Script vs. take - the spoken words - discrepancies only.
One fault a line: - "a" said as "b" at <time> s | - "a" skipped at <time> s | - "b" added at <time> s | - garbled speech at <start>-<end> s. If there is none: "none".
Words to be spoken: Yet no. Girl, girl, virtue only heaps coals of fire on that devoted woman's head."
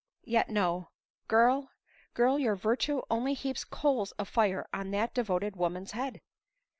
- "your" added at 2.4 s